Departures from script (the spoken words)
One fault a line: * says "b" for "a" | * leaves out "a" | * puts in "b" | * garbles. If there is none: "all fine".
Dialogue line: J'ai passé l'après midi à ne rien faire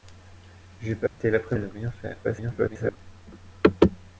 * leaves out "midi"
* garbles